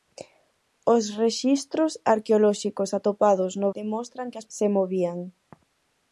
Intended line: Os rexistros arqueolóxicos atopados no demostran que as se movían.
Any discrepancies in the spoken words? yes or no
no